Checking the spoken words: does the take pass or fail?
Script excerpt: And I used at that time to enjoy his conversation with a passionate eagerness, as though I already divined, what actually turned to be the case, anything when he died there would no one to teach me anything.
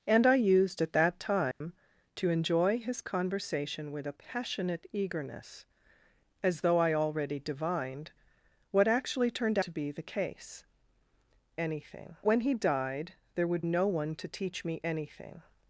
pass